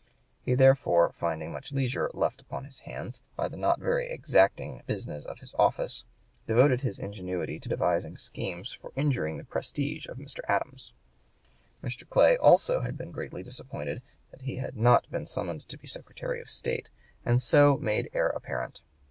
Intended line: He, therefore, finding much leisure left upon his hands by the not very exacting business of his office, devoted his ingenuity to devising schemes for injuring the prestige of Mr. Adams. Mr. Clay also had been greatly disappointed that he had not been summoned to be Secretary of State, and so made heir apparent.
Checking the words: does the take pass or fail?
pass